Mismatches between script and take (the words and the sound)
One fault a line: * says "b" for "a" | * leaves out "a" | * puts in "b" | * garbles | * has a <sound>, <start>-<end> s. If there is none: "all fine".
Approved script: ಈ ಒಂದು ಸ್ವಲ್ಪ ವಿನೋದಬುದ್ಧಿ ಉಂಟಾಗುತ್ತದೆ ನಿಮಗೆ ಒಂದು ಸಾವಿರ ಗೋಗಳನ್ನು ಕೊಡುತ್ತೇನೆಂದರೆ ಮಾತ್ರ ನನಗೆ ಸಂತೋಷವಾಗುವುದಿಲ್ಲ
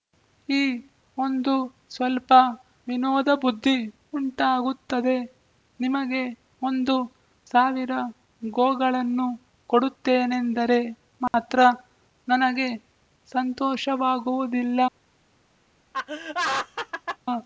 * has a dropout, 11.3-11.3 s
* has a laugh, 15.9-17.2 s